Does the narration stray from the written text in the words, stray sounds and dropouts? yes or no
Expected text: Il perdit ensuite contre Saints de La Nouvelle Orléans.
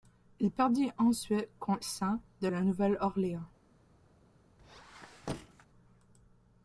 yes